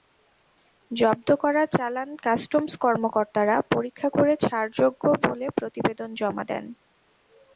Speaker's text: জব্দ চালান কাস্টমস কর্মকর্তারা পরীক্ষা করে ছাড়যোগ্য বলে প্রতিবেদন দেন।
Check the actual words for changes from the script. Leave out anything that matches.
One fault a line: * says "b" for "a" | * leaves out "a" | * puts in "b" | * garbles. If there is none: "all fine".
* puts in "করা"
* puts in "জমা"